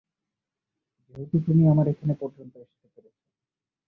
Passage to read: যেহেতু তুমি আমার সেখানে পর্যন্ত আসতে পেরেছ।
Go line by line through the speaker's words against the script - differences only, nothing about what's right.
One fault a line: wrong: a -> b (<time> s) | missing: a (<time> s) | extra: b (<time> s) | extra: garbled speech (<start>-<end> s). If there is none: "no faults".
wrong: সেখানে -> এখানে (1.9 s)